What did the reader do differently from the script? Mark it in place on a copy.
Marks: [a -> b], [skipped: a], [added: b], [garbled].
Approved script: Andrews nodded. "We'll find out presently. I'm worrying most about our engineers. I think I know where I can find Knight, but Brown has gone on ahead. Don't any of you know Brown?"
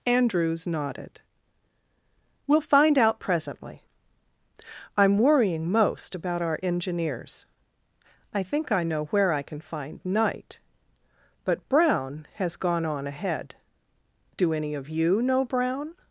Andrews nodded. "We'll find out presently. I'm worrying most about our engineers. I think I know where I can find Knight, but Brown has gone on ahead. [Don't -> Do] any of you know Brown?"